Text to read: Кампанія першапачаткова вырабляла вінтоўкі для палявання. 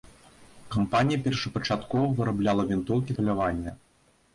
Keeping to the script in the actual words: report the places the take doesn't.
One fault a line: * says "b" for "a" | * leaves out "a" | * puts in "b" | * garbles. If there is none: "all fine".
* leaves out "для"